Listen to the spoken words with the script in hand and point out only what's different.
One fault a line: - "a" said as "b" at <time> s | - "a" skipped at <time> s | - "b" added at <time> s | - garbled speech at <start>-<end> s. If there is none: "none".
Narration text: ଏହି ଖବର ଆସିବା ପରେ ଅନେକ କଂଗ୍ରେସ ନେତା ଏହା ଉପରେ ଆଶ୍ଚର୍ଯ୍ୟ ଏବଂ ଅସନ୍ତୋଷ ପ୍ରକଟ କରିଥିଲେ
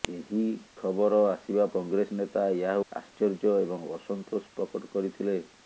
- "ପରେ ଅନେକ" skipped at 1.7 s
- "ଉପରେ" skipped at 2.8 s